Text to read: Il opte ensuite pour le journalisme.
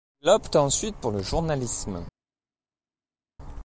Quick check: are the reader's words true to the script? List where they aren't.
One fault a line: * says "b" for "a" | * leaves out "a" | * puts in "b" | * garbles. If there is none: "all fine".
all fine